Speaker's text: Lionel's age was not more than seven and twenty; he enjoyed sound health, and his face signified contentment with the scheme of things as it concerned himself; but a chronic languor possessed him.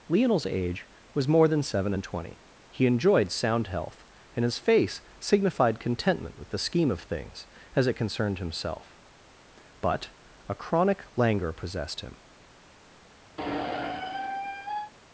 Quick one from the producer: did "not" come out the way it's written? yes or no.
no